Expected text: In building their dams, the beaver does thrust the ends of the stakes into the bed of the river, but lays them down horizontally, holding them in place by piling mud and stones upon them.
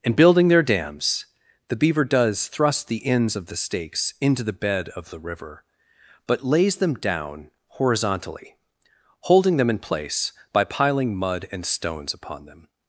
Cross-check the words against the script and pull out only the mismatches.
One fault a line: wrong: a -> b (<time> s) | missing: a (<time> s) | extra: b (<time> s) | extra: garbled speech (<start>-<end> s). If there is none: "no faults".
no faults